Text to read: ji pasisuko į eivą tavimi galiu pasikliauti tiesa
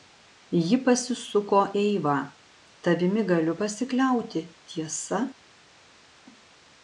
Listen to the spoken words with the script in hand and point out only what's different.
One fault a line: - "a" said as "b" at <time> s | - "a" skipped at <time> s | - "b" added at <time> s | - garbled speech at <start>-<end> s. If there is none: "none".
- "į" skipped at 1.6 s